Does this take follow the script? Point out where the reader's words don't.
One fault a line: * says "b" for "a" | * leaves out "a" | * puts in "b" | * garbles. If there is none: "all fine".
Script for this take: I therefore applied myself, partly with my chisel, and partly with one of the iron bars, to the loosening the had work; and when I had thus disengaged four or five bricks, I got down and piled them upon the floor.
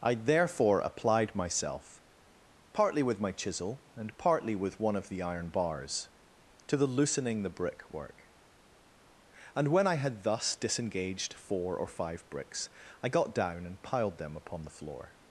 * says "brick" for "had"